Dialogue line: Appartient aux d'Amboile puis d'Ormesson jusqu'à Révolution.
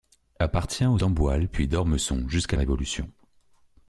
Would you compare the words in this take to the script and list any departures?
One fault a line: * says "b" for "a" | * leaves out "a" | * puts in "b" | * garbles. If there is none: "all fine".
all fine